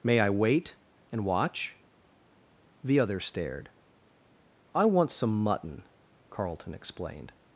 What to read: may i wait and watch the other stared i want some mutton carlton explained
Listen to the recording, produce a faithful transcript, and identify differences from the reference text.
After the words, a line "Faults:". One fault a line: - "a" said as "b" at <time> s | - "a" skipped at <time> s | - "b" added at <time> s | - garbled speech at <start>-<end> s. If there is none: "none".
may i wait and watch the other stared i want some mutton carlton explained
Faults:
none